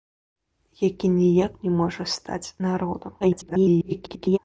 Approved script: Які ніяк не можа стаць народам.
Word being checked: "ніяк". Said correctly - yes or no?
yes